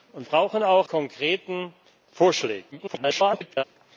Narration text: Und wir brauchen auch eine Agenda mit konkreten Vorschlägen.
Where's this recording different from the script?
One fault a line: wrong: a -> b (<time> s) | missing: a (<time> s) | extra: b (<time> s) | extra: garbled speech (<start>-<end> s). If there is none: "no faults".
missing: wir (0.3 s)
missing: eine Agenda mit (0.9 s)
extra: garbled speech (2.7-3.6 s)